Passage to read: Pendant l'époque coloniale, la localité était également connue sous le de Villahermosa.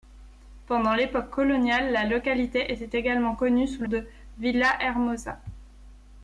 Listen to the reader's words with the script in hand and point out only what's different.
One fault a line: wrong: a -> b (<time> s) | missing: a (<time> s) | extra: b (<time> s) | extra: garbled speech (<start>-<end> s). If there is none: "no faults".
no faults